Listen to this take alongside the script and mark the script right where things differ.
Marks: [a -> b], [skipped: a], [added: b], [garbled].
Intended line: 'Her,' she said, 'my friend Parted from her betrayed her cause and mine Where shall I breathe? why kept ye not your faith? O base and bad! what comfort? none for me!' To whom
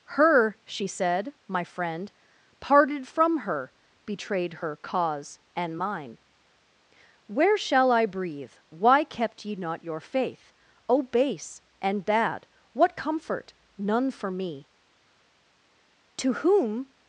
'Her,' she said, 'my friend Parted from her betrayed her cause and mine Where shall I breathe? why kept ye not your faith? O base and bad! what comfort? none for me!' To whom